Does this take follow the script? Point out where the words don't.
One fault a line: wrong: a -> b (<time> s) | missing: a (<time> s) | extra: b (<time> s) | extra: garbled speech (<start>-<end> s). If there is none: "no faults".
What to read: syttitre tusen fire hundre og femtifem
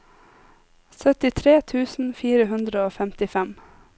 no faults